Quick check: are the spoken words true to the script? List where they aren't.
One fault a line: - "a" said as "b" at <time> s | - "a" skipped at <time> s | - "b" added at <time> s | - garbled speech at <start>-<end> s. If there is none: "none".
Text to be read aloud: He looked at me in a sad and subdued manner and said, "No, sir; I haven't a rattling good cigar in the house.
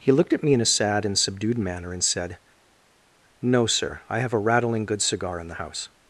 - "haven't" said as "have" at 4.2 s